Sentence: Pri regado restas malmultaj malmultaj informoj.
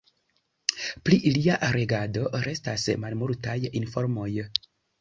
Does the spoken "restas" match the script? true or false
true